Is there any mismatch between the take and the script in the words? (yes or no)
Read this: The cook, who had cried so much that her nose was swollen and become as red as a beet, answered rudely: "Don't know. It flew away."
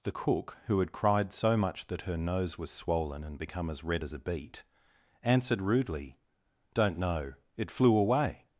no